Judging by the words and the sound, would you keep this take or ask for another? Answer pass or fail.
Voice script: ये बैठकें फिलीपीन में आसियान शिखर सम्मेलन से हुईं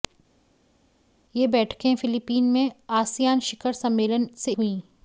pass